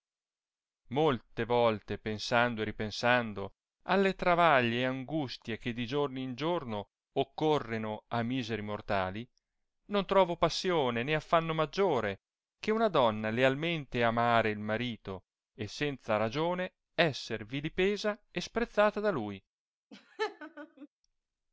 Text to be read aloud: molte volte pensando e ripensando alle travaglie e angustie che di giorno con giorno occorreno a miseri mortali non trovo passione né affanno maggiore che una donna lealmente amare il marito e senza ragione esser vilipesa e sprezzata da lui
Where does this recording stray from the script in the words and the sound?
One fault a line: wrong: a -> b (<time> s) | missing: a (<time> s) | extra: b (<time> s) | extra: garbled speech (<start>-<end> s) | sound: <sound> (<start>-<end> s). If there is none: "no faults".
wrong: con -> in (6.2 s)
sound: laugh (19.9-20.9 s)